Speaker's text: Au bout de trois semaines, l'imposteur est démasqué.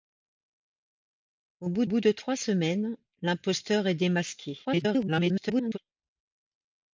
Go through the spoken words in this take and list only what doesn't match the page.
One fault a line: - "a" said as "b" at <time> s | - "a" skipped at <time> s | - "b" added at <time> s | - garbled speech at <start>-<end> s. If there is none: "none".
- "bout" added at 1.8 s
- garbled speech at 4.6-5.8 s